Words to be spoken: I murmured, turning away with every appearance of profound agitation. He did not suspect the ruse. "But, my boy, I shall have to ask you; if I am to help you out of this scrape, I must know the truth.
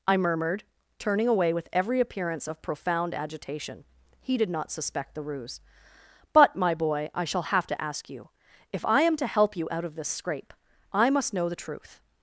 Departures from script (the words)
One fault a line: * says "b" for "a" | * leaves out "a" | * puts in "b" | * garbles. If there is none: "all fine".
all fine